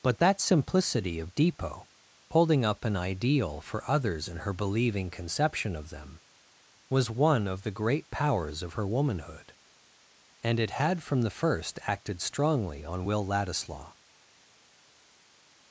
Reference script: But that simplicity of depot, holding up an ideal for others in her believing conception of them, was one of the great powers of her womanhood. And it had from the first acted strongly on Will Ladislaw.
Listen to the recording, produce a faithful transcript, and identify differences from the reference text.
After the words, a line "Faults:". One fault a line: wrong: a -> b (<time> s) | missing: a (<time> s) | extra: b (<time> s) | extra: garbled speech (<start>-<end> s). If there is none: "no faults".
But that simplicity of depot, holding up an ideal for others in her believing conception of them, was one of the great powers of her womanhood. And it had from the first acted strongly on Will Ladislaw.
Faults:
no faults